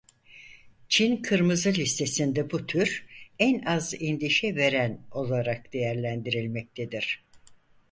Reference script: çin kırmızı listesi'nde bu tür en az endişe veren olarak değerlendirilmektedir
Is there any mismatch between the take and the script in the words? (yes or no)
no